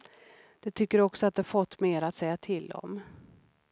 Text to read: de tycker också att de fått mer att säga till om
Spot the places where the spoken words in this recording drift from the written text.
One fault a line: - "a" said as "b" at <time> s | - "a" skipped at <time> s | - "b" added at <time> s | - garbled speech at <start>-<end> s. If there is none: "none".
none